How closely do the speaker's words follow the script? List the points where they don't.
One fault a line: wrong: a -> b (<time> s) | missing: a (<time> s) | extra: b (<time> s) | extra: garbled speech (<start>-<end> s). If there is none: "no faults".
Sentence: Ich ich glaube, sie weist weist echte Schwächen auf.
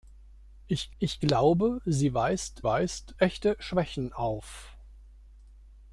no faults